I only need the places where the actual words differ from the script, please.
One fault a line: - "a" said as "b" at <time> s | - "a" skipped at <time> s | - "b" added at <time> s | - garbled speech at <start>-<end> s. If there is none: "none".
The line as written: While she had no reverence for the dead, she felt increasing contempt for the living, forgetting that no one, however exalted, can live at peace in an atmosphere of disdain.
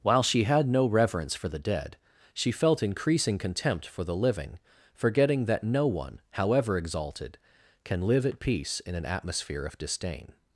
none